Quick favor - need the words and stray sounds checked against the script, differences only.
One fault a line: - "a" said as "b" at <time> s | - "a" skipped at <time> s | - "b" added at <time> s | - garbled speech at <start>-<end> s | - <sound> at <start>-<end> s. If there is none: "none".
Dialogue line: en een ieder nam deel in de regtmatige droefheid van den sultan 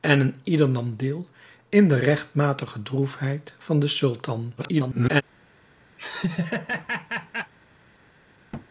- garbled speech at 4.6-5.2 s
- laugh at 6.0-7.5 s
- thud at 8.5-8.7 s